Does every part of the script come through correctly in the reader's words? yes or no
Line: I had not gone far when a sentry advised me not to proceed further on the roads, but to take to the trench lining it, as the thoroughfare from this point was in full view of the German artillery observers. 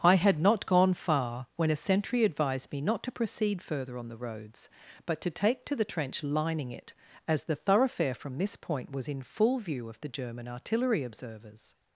yes